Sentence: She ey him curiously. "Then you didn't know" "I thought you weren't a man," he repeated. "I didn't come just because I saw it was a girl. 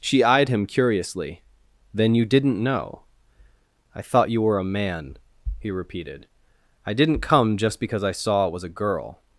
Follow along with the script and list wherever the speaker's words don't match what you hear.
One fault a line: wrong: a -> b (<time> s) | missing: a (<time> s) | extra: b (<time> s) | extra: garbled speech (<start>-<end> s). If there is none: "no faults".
wrong: ey -> eyed (0.2 s)
wrong: weren't -> were (4.4 s)